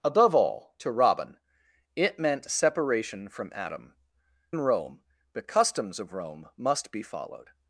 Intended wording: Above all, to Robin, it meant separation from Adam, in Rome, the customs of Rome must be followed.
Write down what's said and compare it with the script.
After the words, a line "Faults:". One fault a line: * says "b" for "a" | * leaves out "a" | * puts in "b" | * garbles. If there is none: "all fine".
Above all, to Robin, it meant separation from Adam, in Rome, the customs of Rome must be followed.
Faults:
all fine